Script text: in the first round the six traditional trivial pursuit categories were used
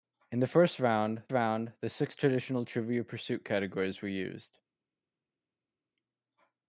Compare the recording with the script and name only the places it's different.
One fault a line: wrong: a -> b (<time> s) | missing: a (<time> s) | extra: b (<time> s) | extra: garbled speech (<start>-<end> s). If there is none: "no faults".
extra: round (1.3 s)